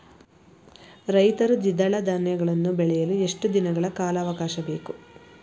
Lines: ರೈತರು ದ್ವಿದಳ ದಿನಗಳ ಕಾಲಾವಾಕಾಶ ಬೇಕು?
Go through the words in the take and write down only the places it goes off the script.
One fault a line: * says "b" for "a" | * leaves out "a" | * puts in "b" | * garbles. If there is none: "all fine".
* puts in "ಧಾನ್ಯಗಳನ್ನು ಬೆಳೆಯಲು ಎಷ್ಟು"